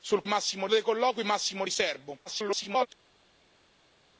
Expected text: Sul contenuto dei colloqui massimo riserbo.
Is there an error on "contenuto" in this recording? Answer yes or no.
yes